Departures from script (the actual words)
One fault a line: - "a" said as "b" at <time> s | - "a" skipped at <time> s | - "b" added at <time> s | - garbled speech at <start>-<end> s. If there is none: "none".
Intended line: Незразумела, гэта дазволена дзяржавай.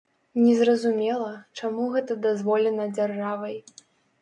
- "чаму" added at 1.6 s